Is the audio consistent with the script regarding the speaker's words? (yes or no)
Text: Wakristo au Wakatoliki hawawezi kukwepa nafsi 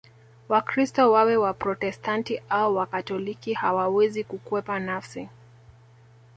no